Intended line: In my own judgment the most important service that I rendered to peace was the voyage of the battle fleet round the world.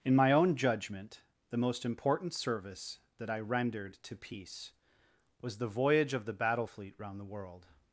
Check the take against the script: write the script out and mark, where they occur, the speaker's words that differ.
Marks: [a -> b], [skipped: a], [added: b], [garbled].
In my own judgment the most important service that I rendered to peace was the voyage of the battle fleet round the world.